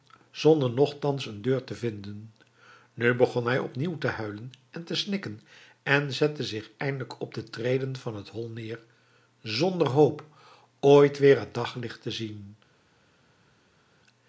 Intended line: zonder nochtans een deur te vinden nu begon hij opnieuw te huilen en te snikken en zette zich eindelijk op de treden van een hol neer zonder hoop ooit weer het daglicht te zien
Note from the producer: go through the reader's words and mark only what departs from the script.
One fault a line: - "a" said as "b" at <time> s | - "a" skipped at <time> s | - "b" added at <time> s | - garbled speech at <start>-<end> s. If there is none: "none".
- "een" said as "het" at 8.2 s